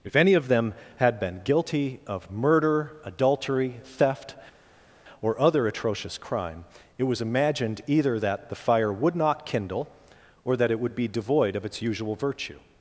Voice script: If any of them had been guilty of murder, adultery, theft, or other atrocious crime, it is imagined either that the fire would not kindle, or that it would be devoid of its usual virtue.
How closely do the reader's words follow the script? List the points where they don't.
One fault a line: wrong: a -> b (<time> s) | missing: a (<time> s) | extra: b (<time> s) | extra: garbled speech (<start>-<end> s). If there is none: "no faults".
wrong: is -> was (7.0 s)